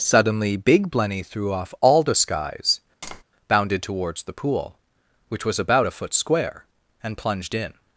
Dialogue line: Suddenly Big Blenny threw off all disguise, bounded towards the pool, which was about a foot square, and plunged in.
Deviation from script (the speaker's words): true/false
false